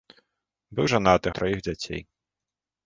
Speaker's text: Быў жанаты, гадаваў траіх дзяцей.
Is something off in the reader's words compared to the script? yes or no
yes